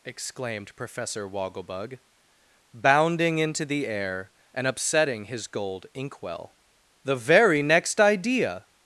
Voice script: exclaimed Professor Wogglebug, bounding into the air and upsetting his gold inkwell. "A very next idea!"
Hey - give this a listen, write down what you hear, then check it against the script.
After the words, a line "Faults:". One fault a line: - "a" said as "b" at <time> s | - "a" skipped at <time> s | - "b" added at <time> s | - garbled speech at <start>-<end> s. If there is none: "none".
exclaimed Professor Wogglebug, bounding into the air and upsetting his gold inkwell. "The very next idea!"
Faults:
- "A" said as "The" at 7.0 s